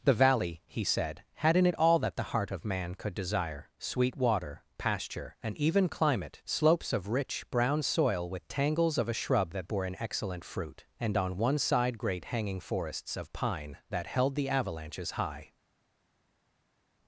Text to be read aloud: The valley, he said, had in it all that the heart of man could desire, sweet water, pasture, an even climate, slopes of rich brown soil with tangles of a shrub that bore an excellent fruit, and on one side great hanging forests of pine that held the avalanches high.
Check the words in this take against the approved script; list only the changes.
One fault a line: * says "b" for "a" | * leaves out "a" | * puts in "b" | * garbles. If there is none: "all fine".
all fine